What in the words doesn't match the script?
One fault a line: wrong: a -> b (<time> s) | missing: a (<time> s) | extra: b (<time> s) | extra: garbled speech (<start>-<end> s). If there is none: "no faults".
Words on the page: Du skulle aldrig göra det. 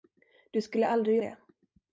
missing: göra (1.2 s)